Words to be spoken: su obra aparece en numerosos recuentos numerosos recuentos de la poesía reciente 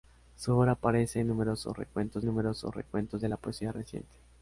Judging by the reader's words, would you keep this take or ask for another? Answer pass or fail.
pass